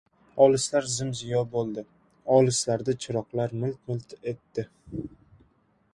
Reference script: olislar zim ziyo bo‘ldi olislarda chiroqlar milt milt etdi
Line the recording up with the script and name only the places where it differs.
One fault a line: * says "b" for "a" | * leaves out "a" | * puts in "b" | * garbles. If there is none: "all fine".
all fine